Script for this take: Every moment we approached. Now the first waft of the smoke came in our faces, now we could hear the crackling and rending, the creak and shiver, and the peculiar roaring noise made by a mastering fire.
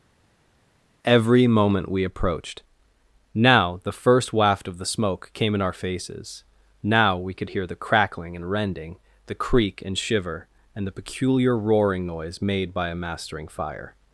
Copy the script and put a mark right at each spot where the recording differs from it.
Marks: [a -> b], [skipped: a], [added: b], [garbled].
Every moment we approached. Now the first waft of the smoke came in our faces, now we could hear the crackling and rending, the creak and shiver, and the peculiar roaring noise made by a mastering fire.